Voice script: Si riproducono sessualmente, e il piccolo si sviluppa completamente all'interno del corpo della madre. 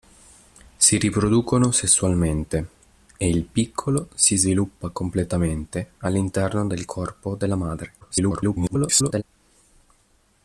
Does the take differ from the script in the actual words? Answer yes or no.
yes